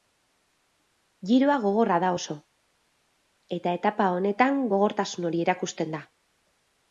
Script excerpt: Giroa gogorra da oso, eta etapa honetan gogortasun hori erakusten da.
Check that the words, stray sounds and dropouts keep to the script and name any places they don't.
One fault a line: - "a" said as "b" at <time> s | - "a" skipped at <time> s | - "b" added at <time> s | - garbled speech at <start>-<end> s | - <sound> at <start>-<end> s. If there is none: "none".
none